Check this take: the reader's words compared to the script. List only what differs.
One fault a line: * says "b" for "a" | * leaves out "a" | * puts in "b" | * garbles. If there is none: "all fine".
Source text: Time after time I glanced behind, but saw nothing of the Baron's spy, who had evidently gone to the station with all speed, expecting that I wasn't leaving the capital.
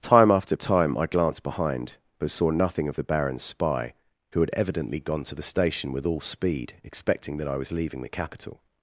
* says "was" for "wasn't"